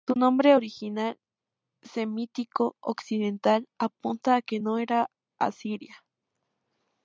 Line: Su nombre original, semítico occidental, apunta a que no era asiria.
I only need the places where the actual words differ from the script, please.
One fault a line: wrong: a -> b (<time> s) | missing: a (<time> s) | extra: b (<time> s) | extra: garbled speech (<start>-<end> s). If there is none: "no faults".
no faults